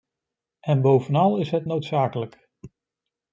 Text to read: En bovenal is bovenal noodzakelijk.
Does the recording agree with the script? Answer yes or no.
no